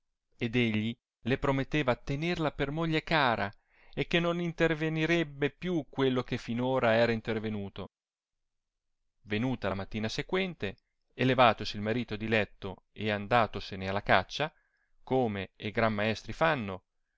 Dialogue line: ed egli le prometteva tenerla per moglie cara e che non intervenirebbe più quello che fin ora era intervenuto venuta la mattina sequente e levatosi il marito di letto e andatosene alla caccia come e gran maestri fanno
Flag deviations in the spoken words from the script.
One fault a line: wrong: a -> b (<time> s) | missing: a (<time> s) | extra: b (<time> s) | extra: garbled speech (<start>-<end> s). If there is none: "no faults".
no faults